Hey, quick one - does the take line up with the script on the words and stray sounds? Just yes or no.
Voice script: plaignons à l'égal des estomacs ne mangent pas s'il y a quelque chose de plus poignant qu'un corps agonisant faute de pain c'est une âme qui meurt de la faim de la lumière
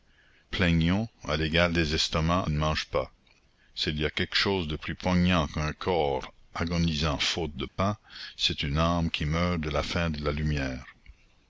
no